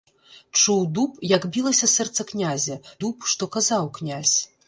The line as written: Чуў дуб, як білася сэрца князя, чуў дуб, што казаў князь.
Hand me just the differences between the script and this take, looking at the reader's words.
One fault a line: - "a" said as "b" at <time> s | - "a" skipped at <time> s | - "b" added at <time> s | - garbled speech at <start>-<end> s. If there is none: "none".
- "чуў" skipped at 2.8 s